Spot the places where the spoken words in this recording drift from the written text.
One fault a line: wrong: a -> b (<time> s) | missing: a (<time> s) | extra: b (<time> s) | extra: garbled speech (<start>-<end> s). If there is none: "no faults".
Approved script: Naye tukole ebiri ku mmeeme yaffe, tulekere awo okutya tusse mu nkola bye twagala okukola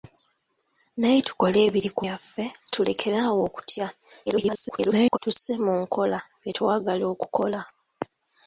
missing: mmeeme (2.0 s)
extra: garbled speech (4.3-5.2 s)